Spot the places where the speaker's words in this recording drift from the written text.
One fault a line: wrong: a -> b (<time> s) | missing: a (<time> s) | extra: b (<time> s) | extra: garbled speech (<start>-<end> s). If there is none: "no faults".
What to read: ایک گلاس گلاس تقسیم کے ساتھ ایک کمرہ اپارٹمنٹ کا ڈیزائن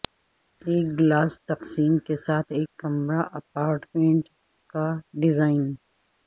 missing: گلاس (1.3 s)